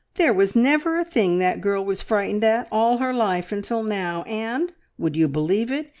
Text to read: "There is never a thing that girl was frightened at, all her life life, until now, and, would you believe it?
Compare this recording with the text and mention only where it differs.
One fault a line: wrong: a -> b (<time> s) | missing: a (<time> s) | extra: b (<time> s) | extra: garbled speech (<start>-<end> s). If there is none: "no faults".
wrong: is -> was (0.3 s)
missing: life (3.5 s)